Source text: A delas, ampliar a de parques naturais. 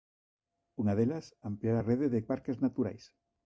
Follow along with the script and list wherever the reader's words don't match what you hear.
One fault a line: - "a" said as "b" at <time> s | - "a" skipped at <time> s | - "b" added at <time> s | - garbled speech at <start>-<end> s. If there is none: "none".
- "A" said as "Unha" at 0.8 s
- "rede" added at 1.9 s